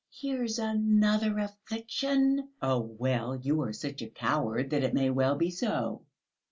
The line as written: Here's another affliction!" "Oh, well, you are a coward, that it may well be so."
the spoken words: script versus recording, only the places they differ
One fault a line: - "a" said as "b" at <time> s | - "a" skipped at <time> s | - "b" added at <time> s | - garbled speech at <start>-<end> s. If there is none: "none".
- "such" added at 3.7 s